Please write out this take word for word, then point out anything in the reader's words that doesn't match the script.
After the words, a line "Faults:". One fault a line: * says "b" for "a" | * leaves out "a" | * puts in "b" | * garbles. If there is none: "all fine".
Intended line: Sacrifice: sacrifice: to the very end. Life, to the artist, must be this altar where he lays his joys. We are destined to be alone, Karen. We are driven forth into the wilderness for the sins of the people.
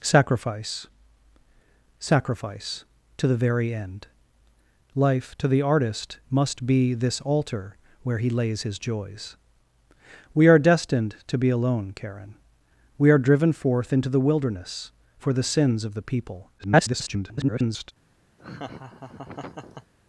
Sacrifice: sacrifice: to the very end. Life, to the artist, must be this altar where he lays his joys. We are destined to be alone, Karen. We are driven forth into the wilderness for the sins of the people. [garbled]
Faults:
* garbles